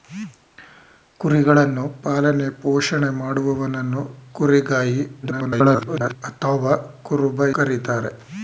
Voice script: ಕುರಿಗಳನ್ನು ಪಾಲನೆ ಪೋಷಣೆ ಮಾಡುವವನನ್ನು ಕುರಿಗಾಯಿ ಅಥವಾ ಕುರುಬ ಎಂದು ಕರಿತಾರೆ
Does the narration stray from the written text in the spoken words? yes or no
yes